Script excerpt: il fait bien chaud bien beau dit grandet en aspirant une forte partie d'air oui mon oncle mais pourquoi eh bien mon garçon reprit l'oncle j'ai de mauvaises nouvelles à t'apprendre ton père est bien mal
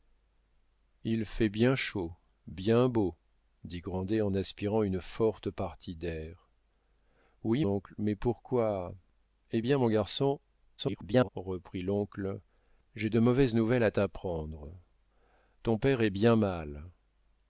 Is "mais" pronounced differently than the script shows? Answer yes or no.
no